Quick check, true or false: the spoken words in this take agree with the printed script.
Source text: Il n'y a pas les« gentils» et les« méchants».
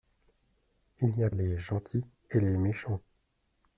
false